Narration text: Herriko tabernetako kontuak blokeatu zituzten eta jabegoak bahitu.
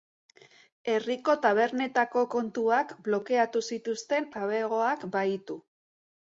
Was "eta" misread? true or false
true